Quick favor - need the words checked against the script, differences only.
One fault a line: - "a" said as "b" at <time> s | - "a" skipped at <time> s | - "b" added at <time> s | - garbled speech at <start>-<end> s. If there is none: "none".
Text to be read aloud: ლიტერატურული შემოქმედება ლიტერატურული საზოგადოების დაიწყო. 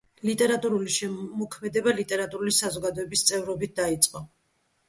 - "წევრობით" added at 3.3 s